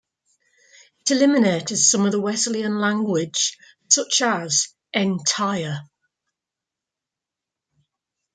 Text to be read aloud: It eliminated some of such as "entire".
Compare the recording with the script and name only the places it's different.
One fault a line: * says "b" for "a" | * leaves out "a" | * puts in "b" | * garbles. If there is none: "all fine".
* puts in "the Wesleyan language"